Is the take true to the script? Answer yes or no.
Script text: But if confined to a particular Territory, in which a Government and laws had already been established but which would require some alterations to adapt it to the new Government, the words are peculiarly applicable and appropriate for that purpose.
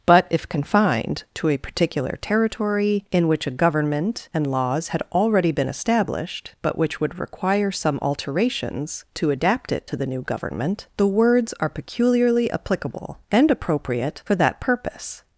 yes